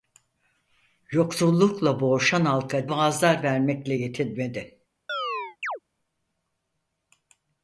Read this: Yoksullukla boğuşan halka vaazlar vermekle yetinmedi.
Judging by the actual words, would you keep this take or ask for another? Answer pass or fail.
pass